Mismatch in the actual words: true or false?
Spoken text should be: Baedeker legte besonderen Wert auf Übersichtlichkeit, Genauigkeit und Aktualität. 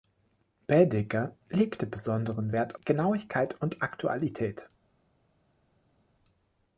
true